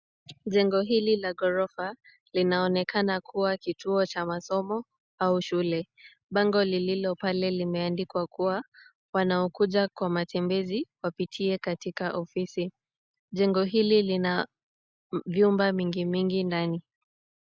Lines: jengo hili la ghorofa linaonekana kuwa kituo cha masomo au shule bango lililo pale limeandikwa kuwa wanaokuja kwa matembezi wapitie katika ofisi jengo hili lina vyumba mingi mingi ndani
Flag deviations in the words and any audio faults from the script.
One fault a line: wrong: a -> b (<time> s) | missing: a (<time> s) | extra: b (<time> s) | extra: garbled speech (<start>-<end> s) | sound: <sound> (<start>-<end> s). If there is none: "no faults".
no faults